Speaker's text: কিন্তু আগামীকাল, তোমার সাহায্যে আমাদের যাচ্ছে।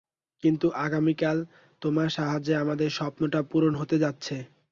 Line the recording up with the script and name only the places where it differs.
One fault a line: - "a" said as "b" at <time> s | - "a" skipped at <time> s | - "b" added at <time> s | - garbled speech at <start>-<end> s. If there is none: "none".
- "স্বপ্নটা পূরণ হতে" added at 2.9 s